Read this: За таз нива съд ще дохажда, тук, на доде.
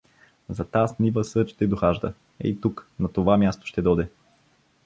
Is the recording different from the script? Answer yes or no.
yes